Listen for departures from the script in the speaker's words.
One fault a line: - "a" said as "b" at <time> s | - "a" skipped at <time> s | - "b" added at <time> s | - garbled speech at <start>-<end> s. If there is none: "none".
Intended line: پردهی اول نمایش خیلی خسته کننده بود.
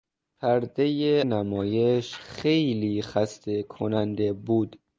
- "اول" skipped at 1.2 s